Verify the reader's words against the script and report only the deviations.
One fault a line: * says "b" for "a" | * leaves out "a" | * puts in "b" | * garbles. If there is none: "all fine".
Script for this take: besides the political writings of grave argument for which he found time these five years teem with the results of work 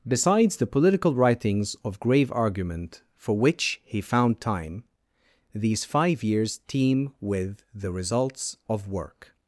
all fine